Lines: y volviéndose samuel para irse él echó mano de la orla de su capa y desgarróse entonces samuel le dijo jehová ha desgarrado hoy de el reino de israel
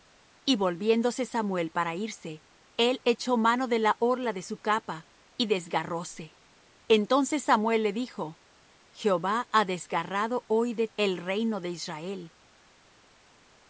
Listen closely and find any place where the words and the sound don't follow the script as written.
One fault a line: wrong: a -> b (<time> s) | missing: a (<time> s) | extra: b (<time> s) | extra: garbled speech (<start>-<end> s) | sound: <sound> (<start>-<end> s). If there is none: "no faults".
no faults